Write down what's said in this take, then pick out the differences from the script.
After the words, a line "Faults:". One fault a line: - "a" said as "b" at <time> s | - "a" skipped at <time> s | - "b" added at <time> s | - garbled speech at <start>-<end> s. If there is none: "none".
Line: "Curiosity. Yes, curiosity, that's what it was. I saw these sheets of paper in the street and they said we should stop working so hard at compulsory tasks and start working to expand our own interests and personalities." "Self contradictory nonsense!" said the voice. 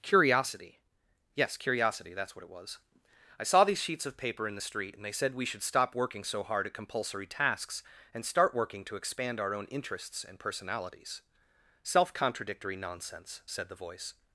"Curiosity. Yes, curiosity, that's what it was. I saw these sheets of paper in the street and they said we should stop working so hard at compulsory tasks and start working to expand our own interests and personalities." "Self contradictory nonsense!" said the voice.
Faults:
none